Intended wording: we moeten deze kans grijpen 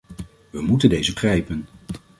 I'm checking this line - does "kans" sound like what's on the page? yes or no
no